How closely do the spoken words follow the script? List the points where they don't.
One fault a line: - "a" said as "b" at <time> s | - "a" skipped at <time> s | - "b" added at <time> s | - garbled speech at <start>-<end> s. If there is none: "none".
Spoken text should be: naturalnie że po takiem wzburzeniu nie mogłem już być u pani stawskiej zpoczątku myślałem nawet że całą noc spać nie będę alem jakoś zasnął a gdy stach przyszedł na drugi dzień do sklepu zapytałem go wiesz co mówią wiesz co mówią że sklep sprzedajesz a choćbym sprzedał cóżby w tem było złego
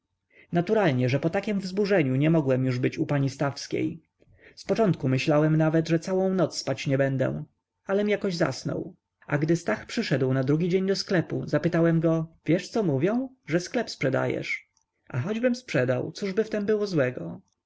- "wiesz co mówią" skipped at 13.3 s